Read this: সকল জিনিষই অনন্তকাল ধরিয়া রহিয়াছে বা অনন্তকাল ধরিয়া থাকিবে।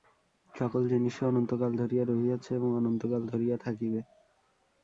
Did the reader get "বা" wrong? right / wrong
wrong